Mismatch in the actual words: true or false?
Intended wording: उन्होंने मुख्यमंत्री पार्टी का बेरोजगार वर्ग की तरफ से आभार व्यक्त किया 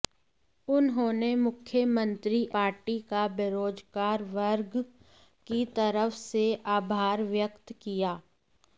false